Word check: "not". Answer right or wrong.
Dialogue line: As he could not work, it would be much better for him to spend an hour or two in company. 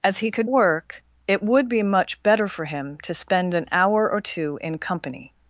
wrong